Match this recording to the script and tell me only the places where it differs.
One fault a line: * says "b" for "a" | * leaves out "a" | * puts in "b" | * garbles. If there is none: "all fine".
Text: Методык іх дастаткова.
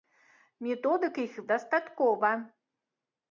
all fine